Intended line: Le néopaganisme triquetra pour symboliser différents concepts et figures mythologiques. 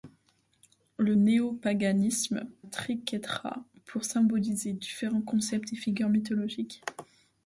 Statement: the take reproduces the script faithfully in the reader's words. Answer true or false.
true